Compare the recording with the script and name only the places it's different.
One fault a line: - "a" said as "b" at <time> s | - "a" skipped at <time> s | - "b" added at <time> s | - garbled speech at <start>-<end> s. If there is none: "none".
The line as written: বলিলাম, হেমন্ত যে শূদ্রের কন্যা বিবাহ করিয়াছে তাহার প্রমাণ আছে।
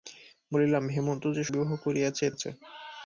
- "শূদ্রের কন্যা" skipped at 1.4 s
- "তাহার প্রমাণ" skipped at 2.2 s